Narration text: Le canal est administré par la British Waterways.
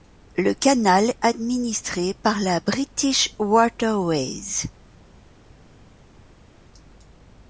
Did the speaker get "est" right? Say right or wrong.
wrong